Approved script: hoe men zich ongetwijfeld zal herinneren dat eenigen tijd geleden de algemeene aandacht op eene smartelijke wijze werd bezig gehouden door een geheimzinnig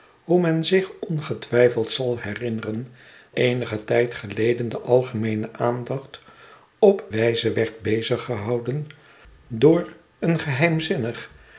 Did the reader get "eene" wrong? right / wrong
wrong